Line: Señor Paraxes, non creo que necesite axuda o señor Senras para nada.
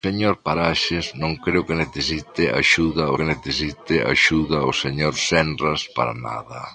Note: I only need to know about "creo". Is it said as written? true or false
true